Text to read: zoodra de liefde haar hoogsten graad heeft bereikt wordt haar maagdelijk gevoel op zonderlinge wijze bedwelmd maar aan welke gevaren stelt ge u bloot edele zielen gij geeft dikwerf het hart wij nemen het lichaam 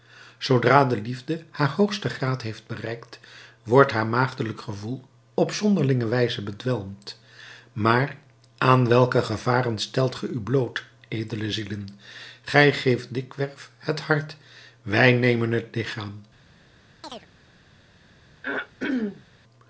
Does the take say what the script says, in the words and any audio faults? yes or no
no